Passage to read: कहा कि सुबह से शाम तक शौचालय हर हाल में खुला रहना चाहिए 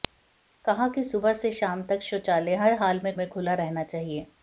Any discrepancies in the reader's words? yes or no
yes